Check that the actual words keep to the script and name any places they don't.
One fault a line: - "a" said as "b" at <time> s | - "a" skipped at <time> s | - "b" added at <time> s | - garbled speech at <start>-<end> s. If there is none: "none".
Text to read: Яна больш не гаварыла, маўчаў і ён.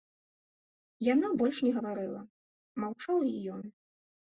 none